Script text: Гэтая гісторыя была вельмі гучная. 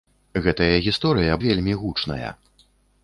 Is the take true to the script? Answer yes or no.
no